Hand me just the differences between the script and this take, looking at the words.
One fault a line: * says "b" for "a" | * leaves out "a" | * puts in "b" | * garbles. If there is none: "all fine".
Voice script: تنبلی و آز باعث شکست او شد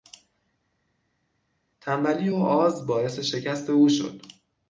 all fine